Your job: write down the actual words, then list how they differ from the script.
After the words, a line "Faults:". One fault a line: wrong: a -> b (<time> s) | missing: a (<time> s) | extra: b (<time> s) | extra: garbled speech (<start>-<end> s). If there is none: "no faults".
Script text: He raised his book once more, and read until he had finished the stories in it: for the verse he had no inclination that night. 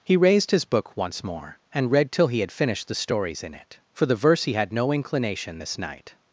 He raised his book once more, and read till he had finished the stories in it: for the verse he had no inclination this night.
Faults:
wrong: until -> till (2.1 s)
wrong: that -> this (5.6 s)